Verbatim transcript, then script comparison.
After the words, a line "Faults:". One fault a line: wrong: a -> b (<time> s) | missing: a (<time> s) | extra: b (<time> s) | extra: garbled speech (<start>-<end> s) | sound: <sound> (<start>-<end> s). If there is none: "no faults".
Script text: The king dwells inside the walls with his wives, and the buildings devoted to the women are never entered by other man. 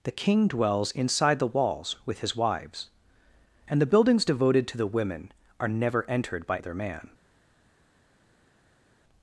The king dwells inside the walls with his wives, and the buildings devoted to the women are never entered by other man.
Faults:
no faults